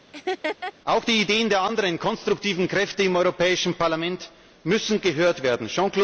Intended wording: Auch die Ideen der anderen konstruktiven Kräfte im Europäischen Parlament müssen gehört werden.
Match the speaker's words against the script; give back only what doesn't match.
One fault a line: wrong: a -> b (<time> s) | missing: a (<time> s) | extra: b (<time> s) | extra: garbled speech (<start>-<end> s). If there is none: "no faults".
no faults